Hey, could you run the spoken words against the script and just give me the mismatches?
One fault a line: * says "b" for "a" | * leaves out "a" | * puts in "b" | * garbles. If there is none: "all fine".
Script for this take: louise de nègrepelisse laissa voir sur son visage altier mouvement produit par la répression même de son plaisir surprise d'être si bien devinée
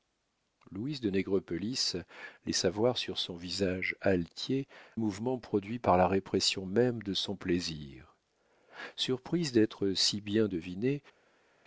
all fine